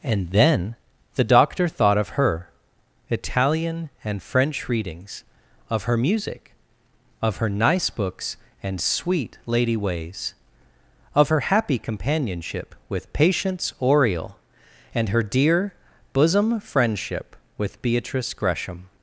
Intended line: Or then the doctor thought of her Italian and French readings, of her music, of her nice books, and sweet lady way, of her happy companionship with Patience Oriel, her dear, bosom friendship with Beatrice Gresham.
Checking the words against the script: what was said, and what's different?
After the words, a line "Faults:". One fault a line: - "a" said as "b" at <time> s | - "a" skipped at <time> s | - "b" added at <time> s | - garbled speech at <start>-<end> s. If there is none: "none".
And then the doctor thought of her Italian and French readings, of her music, of her nice books, and sweet lady ways, of her happy companionship with Patience Oriel, and her dear, bosom friendship with Beatrice Gresham.
Faults:
- "Or" said as "And" at 0.0 s
- "way" said as "ways" at 9.8 s
- "and" added at 14.9 s